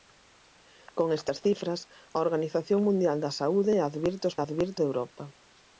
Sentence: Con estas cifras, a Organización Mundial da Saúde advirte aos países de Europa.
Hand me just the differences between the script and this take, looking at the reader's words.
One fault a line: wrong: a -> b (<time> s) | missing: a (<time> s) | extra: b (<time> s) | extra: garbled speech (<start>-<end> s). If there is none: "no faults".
wrong: países -> advirte (4.4 s)